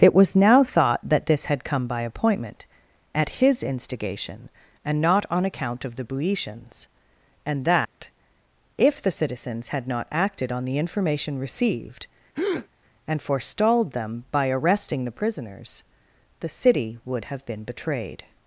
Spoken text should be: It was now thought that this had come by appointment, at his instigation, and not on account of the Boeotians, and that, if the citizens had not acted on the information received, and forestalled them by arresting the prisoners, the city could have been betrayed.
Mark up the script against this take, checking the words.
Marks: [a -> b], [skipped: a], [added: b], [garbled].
It was now thought that this had come by appointment, at his instigation, and not on account of the Boeotians, and that, if the citizens had not acted on the information received, and forestalled them by arresting the prisoners, the city [could -> would] have been betrayed.